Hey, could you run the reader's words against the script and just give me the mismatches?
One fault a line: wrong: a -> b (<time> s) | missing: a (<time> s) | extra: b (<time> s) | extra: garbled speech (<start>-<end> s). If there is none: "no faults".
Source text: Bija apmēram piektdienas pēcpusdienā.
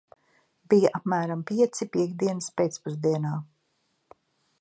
extra: pieci (1.5 s)